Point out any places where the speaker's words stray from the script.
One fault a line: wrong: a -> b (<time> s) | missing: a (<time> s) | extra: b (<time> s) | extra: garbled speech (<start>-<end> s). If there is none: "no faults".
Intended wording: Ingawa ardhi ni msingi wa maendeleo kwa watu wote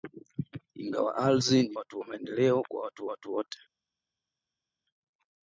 wrong: msingi -> watu (1.8 s)
extra: watu (3.1 s)